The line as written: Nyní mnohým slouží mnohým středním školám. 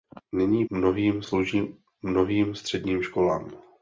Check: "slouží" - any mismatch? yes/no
no